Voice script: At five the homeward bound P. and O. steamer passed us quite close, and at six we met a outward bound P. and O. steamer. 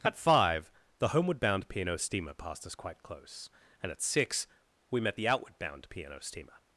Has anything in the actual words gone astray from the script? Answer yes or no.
yes